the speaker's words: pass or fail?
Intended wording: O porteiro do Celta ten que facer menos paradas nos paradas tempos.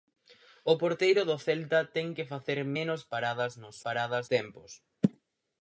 pass